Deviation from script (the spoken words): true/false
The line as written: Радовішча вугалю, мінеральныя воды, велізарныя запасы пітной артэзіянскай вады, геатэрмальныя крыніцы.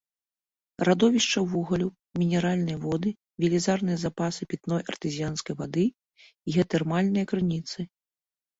false